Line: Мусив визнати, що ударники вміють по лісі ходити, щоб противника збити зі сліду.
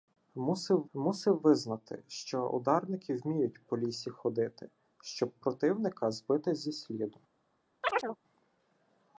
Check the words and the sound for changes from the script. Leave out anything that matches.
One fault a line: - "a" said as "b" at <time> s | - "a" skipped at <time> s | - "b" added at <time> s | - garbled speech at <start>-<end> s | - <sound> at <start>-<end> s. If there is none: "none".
- "мусив" added at 0.9 s
- chirp at 7.8-8.2 s